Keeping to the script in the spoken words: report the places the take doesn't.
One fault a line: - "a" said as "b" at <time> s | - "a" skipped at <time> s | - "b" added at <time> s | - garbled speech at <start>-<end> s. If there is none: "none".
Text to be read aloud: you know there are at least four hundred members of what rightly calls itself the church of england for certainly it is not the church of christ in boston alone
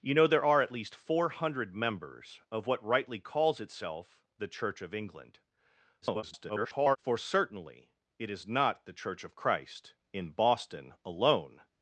- garbled speech at 6.0-7.0 s